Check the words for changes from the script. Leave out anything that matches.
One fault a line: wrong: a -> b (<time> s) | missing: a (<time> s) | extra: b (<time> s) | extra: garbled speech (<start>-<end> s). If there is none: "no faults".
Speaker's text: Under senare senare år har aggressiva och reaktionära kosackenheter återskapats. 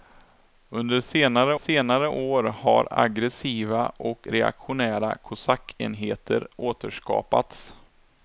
no faults